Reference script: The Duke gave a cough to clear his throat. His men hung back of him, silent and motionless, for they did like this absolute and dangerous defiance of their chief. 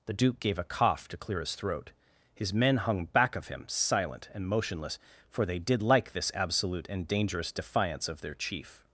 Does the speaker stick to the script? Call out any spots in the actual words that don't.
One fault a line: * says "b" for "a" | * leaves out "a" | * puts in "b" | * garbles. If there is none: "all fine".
all fine